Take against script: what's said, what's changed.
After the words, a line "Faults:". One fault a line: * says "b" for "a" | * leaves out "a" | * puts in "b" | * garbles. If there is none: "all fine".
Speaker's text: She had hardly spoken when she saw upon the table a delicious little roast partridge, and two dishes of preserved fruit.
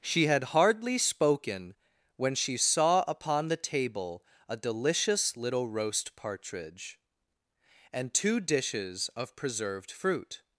She had hardly spoken when she saw upon the table a delicious little roast partridge, and two dishes of preserved fruit.
Faults:
all fine